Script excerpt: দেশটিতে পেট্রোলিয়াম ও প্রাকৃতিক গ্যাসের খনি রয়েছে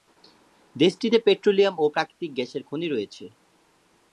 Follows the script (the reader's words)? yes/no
yes